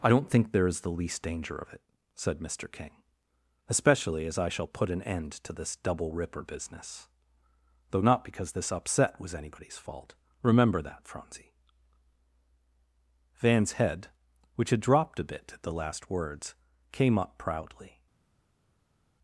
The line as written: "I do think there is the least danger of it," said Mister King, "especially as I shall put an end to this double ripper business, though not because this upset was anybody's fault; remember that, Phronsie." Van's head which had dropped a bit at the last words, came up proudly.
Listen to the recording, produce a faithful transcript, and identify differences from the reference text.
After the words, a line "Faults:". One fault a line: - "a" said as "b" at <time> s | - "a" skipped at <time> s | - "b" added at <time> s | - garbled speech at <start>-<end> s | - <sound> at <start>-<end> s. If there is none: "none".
"I don't think there is the least danger of it," said Mister King, "especially as I shall put an end to this double ripper business, though not because this upset was anybody's fault; remember that, Phronsie." Van's head which had dropped a bit at the last words, came up proudly.
Faults:
- "do" said as "don't" at 0.1 s